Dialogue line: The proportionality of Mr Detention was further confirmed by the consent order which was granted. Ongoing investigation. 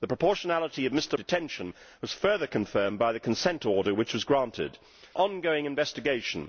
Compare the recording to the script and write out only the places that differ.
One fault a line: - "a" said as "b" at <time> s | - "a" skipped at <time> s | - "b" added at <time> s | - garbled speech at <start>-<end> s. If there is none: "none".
none